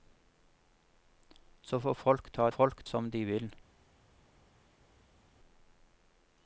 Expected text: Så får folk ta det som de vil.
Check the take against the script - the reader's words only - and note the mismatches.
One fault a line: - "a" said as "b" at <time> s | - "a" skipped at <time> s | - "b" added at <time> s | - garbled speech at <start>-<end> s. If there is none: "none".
- "det" said as "folk" at 2.5 s